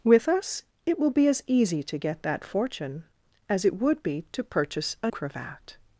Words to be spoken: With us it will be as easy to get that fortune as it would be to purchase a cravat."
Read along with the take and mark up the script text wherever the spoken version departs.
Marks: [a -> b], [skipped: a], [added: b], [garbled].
With us it will be as easy to get that fortune as it would be to purchase a cravat."